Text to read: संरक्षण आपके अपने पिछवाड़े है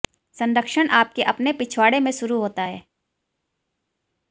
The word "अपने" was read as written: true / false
true